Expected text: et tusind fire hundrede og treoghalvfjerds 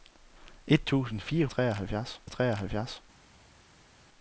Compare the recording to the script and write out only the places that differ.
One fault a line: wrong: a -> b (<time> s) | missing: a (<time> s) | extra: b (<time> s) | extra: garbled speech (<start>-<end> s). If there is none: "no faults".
wrong: hundrede -> treoghalvfjerds (1.5 s)